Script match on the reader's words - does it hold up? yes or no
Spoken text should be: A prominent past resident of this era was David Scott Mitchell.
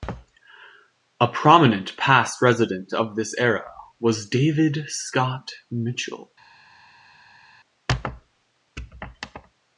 yes